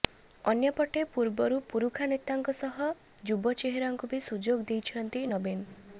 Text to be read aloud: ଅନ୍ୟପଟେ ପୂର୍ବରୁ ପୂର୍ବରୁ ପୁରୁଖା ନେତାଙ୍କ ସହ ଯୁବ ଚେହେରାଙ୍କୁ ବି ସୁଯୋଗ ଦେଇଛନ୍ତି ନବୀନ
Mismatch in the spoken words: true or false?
true